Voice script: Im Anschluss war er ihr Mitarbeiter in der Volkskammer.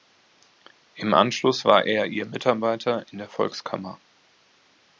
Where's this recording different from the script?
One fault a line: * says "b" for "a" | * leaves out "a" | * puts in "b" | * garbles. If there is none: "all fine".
all fine